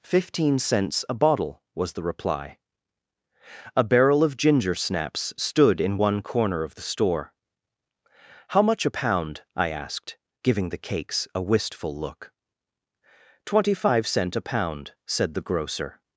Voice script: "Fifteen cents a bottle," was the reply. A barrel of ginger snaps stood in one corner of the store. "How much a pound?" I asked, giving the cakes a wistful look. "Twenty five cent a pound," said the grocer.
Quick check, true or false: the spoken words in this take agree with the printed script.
true